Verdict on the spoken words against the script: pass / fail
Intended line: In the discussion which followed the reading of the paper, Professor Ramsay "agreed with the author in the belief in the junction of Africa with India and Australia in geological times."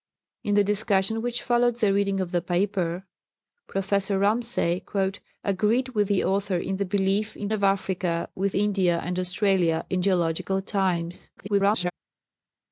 fail